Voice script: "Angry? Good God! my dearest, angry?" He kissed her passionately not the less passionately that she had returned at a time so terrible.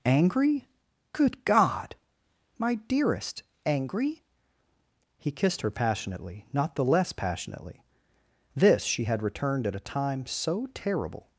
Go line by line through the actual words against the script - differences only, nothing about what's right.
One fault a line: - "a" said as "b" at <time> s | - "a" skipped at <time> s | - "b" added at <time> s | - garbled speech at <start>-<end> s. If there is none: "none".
- "that" said as "this" at 8.6 s